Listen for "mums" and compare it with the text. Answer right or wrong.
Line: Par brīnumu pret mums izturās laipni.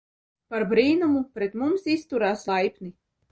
right